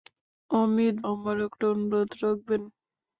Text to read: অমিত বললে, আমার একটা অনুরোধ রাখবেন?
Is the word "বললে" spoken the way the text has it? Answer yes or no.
no